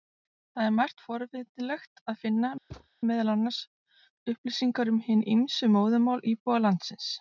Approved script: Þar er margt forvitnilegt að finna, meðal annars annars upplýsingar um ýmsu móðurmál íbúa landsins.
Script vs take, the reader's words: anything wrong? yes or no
yes